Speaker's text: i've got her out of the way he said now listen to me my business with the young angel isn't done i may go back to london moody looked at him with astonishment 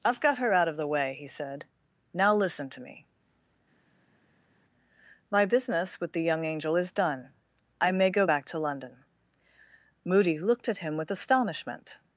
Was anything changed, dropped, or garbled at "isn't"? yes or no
yes